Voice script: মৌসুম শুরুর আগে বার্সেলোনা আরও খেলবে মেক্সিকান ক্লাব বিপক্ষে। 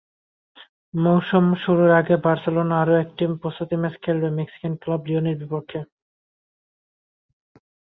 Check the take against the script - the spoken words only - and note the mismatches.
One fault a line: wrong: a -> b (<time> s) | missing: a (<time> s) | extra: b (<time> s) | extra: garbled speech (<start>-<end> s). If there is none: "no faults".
extra: একটি প্রস্তুতি ম্যাচ (3.0 s)
extra: লিওনের (5.1 s)